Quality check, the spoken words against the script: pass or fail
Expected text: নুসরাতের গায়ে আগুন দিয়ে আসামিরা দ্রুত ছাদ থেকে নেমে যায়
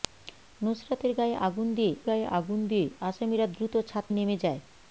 fail